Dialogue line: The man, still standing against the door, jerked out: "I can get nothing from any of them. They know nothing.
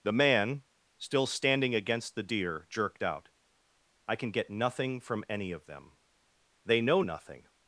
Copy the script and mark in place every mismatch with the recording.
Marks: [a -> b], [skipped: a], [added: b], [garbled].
The man, still standing against the [door, -> deer] jerked out: "I can get nothing from any of them. They know nothing.